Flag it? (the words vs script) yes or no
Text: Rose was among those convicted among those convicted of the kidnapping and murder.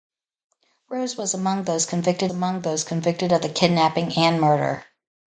no